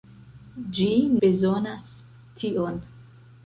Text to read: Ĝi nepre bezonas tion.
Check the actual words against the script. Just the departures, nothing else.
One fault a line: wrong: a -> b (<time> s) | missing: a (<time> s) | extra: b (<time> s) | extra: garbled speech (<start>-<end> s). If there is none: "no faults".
missing: nepre (0.9 s)